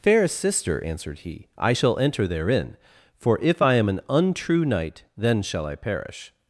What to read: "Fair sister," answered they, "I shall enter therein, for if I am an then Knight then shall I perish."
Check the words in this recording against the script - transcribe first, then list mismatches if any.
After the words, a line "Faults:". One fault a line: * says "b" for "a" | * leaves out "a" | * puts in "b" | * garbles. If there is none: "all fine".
"Fair sister," answered he, "I shall enter therein, for if I am an untrue Knight then shall I perish."
Faults:
* says "he" for "they"
* says "untrue" for "then"